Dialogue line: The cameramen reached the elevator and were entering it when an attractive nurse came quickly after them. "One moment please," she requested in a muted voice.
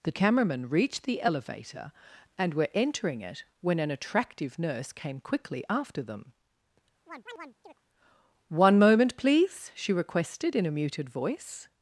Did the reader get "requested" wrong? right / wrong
right